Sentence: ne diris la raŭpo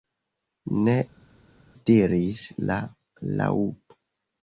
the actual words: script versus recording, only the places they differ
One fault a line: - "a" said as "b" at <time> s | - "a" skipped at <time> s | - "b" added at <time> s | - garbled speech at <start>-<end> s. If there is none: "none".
none